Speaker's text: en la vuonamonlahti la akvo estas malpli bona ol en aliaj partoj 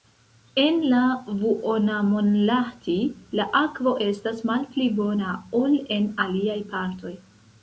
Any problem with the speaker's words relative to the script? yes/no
no